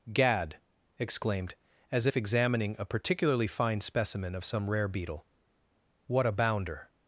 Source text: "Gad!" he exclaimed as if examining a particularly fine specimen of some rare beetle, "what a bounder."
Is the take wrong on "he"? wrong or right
wrong